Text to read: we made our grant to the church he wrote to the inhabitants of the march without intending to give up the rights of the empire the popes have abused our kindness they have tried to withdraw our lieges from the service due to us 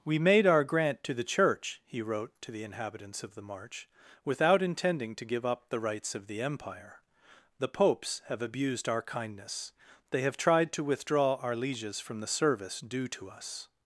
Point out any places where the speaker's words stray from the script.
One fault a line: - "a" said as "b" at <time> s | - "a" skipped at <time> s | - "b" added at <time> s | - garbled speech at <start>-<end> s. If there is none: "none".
none